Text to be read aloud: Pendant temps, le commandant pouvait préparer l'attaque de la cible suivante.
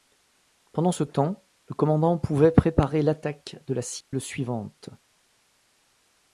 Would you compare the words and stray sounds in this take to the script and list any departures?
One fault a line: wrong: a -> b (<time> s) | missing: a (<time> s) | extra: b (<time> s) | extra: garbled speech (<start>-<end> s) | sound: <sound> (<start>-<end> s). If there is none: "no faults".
extra: ce (0.9 s)
sound: dropout (4.0-4.1 s)